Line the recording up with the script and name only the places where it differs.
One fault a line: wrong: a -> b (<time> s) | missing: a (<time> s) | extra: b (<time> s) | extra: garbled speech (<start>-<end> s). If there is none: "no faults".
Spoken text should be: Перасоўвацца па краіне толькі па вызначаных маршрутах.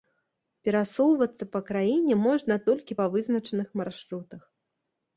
extra: можна (2.3 s)